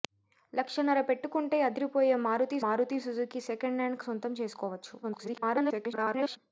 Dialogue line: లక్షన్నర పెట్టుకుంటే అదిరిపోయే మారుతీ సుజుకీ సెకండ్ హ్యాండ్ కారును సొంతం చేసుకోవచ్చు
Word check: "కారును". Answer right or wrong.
wrong